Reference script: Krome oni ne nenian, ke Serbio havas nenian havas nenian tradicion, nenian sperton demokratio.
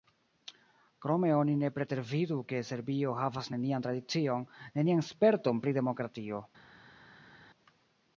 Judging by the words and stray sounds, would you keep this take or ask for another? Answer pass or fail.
fail